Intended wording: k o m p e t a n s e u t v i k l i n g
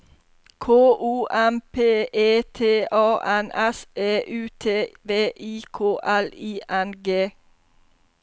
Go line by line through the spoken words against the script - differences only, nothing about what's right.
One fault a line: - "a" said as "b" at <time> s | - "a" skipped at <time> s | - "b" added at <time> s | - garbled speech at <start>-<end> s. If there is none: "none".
none